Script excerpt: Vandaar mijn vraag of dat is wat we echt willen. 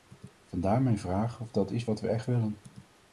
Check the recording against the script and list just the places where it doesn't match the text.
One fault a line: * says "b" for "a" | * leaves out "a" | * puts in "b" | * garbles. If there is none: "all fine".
all fine